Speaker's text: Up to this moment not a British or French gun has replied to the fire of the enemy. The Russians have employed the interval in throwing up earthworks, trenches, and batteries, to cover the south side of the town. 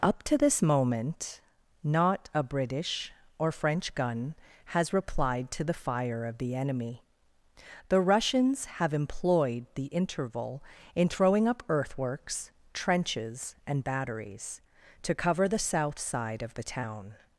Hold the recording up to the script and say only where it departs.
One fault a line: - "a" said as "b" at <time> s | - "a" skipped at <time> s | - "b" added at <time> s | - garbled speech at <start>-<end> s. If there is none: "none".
none